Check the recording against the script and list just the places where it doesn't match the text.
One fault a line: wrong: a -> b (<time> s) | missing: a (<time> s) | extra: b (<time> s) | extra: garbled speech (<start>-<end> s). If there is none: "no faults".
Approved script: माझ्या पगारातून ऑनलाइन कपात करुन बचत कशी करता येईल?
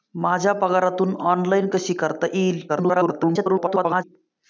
missing: कपात करुन बचत (1.7 s)
extra: garbled speech (2.7-4.0 s)